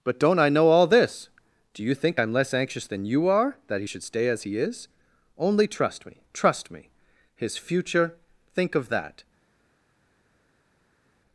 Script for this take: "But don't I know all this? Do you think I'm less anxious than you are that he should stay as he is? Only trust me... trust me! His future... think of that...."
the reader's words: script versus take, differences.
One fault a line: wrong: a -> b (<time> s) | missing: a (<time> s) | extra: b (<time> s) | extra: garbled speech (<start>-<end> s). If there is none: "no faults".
no faults